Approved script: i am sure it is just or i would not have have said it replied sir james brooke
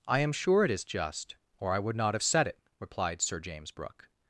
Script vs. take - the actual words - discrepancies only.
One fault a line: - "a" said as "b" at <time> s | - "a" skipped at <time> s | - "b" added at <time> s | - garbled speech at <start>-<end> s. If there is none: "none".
- "have" skipped at 2.2 s